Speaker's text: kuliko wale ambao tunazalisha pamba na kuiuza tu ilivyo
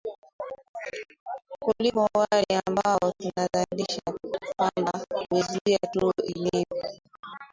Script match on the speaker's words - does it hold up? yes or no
no